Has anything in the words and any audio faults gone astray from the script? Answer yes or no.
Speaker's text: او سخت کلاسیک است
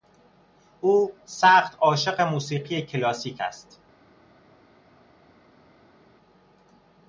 yes